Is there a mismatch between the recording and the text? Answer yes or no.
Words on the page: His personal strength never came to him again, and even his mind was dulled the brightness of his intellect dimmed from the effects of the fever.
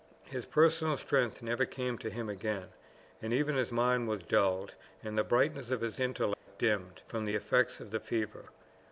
yes